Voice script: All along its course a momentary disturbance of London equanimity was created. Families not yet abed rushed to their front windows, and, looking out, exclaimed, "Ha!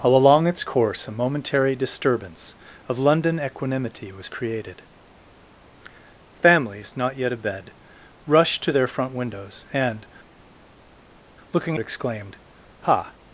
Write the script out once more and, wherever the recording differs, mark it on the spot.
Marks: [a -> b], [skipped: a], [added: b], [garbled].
All along its course a momentary disturbance of London equanimity was created. Families not yet abed rushed to their front windows, and, looking [skipped: out,] exclaimed, "Ha!